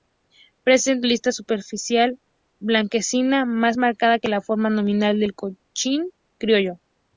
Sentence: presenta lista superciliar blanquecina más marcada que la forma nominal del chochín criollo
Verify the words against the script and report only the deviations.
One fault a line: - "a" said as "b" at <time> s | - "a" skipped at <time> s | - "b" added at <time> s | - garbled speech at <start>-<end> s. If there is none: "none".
none